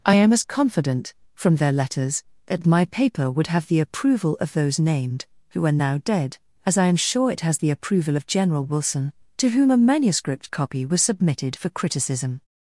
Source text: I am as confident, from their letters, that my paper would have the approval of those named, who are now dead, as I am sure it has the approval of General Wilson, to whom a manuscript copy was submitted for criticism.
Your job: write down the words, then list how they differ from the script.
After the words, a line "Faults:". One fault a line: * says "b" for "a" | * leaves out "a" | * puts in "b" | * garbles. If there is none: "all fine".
I am as confident, from their letters, that my paper would have the approval of those named, who are now dead, as I am sure it has the approval of General Wilson, to whom a manuscript copy was submitted for criticism.
Faults:
all fine